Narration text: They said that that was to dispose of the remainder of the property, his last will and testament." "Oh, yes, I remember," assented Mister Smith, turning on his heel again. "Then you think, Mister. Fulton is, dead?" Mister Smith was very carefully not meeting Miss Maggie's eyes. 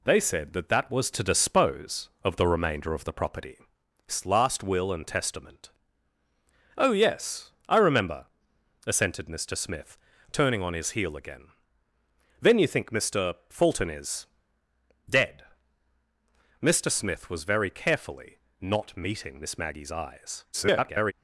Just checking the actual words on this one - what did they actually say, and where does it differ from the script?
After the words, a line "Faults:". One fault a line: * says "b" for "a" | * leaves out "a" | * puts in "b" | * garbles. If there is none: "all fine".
They said that that was to dispose of the remainder of the property, his last will and testament." "Oh, yes, I remember," assented Mister Smith, turning on his heel again. "Then you think, Mister. Fulton is, dead?" Mister Smith was very carefully not meeting Miss Maggie's eyes. [garbled]
Faults:
* garbles